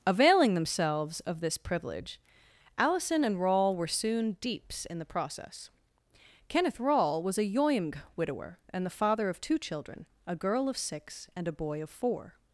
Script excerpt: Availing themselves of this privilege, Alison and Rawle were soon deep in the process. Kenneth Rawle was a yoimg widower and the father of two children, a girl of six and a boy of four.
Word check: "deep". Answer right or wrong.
wrong